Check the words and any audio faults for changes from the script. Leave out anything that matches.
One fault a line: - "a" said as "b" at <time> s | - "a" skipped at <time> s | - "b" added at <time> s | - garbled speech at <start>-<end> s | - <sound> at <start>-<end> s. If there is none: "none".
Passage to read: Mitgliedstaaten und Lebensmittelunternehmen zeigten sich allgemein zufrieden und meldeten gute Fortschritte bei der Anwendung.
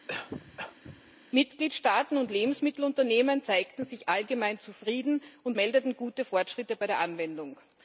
- cough at 0.1-1.2 s